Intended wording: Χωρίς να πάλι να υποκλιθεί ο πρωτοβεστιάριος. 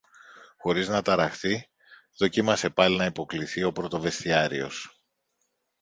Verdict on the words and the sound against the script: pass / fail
fail